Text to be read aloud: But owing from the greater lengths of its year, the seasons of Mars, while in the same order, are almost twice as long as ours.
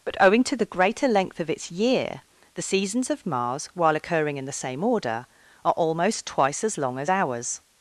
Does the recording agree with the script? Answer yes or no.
no